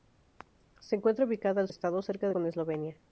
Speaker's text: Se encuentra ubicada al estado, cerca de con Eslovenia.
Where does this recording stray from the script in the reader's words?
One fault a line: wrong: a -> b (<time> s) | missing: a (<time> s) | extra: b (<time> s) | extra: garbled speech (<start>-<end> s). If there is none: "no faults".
no faults